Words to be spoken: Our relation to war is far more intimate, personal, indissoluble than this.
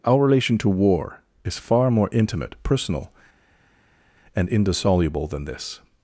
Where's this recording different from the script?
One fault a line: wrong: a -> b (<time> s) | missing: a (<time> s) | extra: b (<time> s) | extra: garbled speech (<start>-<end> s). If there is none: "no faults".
extra: and (4.4 s)